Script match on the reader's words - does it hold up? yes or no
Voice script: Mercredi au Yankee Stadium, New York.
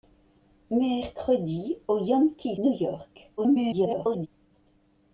no